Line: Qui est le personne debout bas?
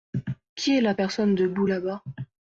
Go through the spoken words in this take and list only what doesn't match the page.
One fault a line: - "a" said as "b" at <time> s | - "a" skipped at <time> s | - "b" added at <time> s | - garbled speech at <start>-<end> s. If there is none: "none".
- "le" said as "la" at 0.8 s
- "là" added at 1.6 s